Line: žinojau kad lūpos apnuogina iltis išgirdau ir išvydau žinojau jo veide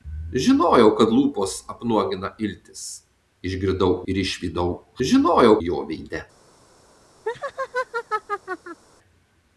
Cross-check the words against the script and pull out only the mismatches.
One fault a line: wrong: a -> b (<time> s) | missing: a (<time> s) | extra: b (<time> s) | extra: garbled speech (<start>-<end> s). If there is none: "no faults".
no faults